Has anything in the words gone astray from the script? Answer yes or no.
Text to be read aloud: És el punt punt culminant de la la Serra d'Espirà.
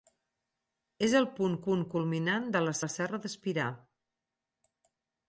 no